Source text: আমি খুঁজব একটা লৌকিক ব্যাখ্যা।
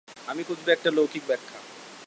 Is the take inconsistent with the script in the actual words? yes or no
no